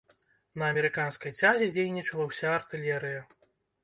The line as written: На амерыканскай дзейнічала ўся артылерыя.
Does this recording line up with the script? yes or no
no